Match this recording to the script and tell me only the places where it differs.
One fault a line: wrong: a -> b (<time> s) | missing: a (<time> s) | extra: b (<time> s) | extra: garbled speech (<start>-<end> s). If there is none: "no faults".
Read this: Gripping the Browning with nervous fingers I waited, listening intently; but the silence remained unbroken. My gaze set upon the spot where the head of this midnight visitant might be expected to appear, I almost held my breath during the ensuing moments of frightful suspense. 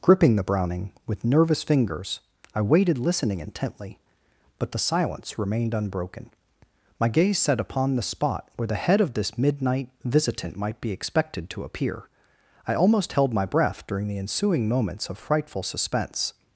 no faults